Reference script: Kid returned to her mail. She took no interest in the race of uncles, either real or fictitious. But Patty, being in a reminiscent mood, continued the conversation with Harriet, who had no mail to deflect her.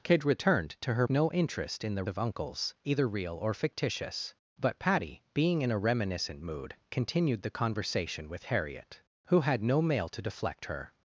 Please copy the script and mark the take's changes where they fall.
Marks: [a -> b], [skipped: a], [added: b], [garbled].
Kid returned to her [skipped: mail. She took] no interest in the [skipped: race] of uncles, either real or fictitious. But Patty, being in a reminiscent mood, continued the conversation with Harriet, who had no mail to deflect her.